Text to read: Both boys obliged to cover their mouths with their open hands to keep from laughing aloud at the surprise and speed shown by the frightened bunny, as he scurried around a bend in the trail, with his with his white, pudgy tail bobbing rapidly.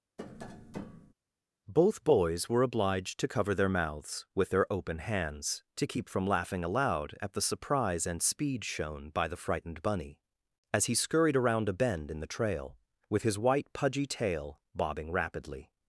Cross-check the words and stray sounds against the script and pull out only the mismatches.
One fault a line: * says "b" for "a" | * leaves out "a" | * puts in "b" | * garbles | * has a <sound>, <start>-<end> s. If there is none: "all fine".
* has a tap, 0.2-1.1 s
* puts in "were"
* leaves out "with his"